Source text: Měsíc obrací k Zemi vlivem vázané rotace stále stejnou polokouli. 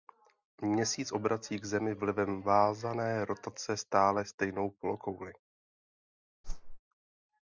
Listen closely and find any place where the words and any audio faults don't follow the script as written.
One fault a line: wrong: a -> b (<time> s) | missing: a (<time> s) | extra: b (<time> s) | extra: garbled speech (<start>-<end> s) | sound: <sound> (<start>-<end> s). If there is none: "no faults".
sound: whoosh (6.4-6.8 s)